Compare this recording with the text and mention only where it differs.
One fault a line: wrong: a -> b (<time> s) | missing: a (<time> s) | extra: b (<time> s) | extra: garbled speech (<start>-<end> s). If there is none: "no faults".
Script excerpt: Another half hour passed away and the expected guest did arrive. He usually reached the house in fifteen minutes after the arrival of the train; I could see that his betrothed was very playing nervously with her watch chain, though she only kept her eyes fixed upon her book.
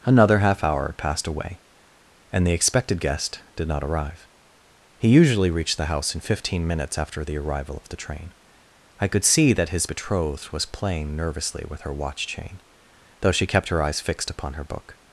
extra: not (3.7 s)
missing: very (10.7 s)
missing: only (13.5 s)